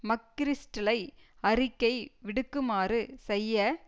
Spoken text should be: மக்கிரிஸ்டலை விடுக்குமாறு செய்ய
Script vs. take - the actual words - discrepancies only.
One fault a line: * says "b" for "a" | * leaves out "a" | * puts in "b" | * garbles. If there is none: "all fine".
* puts in "அறிக்கை"